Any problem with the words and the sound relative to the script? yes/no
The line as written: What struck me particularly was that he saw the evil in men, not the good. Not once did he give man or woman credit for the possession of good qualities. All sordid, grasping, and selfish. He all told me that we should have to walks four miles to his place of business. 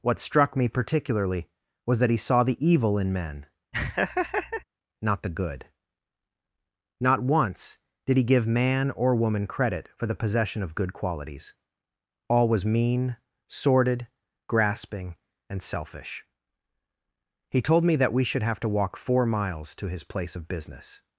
yes